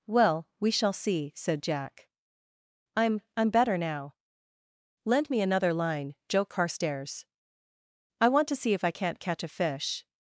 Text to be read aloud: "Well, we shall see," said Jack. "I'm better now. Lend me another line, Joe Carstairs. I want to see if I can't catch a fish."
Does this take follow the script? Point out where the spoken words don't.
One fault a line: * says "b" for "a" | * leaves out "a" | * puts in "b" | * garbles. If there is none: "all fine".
* puts in "I'm"